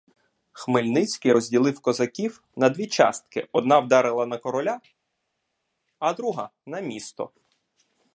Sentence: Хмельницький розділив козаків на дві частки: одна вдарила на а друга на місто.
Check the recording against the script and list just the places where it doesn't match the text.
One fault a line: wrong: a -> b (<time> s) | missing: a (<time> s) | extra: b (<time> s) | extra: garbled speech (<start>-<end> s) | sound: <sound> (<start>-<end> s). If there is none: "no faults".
extra: короля (4.4 s)